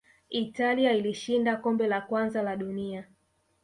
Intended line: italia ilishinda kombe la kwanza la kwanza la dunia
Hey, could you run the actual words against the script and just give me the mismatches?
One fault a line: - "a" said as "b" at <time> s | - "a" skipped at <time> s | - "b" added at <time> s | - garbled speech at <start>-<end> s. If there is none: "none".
- "kwanza la" skipped at 2.5 s